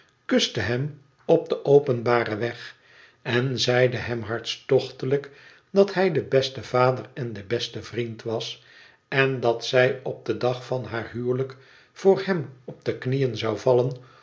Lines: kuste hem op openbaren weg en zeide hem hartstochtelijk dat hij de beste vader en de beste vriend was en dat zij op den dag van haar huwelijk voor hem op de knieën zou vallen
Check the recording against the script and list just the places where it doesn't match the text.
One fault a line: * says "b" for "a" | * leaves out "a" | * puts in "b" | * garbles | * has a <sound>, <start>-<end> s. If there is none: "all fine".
* puts in "den"